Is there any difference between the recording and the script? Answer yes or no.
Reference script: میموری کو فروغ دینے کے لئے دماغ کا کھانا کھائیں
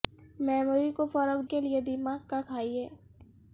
yes